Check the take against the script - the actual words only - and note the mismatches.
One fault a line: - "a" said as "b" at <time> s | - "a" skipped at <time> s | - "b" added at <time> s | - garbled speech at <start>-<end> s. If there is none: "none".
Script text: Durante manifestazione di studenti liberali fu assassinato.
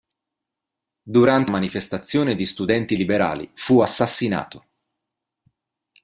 none